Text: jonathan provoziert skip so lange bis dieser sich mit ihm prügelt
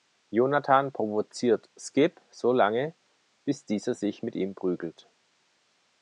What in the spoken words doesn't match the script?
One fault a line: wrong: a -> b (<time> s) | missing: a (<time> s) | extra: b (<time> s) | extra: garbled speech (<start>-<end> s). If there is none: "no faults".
no faults